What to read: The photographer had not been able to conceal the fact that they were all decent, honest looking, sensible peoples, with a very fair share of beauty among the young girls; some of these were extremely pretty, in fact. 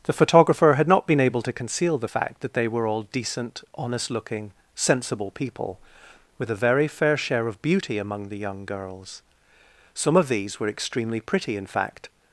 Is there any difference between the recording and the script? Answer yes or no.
yes